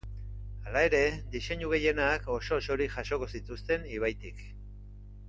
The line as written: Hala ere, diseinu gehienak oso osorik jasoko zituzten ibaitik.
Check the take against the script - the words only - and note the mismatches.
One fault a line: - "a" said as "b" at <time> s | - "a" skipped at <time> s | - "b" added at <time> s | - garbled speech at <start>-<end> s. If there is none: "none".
none